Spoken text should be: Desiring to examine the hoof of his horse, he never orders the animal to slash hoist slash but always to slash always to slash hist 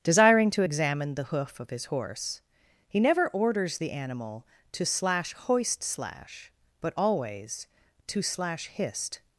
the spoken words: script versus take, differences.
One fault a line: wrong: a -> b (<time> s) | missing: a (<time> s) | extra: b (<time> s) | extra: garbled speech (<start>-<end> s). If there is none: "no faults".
missing: always to slash (8.7 s)